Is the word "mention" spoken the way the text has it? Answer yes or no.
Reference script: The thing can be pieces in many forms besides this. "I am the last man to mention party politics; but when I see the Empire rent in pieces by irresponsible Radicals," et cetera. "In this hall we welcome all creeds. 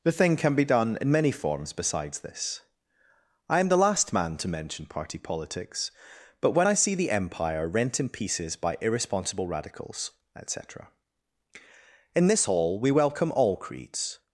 yes